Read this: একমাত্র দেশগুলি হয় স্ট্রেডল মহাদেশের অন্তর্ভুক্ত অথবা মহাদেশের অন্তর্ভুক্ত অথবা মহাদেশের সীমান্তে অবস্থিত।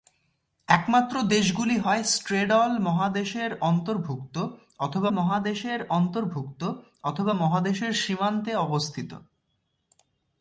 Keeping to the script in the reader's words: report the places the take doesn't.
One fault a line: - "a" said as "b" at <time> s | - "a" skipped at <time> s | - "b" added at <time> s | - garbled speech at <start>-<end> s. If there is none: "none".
none